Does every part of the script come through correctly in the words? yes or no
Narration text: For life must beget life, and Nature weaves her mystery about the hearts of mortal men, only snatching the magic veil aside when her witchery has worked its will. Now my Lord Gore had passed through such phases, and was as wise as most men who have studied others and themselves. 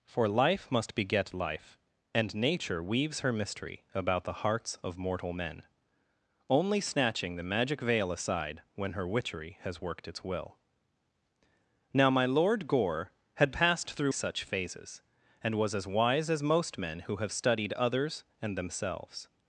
yes